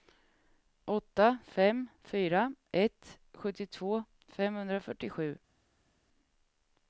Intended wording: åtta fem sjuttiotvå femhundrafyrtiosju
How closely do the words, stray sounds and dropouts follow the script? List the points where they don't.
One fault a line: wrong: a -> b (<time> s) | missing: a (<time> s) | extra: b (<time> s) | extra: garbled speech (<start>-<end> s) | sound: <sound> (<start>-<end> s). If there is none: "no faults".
extra: fyra ett (2.0 s)